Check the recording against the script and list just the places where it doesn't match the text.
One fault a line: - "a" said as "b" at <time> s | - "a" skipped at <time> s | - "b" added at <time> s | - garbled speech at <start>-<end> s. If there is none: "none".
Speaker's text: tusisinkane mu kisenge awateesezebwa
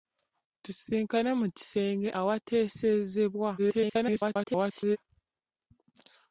- garbled speech at 3.6-5.0 s